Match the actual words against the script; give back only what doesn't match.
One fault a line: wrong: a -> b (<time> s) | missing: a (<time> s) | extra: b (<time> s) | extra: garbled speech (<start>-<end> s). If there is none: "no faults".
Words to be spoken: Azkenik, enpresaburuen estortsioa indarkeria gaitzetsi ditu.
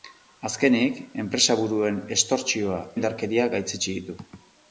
no faults